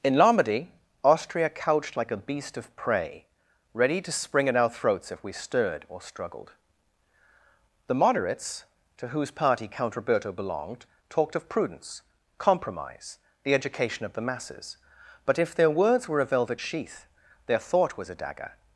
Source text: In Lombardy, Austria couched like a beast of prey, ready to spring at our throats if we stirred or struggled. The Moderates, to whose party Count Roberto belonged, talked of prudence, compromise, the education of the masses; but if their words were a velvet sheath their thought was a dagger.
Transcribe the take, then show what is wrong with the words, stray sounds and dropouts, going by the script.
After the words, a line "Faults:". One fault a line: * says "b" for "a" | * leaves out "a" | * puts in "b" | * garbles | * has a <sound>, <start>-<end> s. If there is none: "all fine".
In Lombardy, Austria couched like a beast of prey, ready to spring at our throats if we stirred or struggled. The Moderates, to whose party Count Roberto belonged, talked of prudence, compromise, the education of the masses; but if their words were a velvet sheath their thought was a dagger.
Faults:
all fine